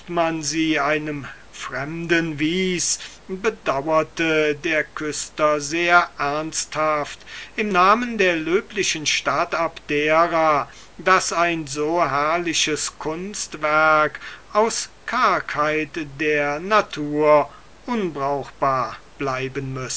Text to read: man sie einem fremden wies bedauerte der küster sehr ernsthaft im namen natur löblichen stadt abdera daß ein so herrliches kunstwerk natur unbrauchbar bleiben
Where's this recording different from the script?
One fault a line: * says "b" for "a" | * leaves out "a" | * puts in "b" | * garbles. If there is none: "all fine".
* says "der" for "natur"
* puts in "aus kargheit der"